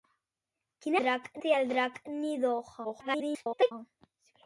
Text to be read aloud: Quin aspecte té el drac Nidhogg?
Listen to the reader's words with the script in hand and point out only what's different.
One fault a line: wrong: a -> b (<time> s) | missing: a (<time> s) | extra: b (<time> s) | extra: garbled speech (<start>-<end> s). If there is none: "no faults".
wrong: aspecte -> drac (1.0 s)
extra: garbled speech (2.8-3.7 s)